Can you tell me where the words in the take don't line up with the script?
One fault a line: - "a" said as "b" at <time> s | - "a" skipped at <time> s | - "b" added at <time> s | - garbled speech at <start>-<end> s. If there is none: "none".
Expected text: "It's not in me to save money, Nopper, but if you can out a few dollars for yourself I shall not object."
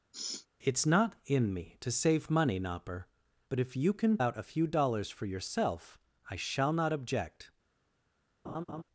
none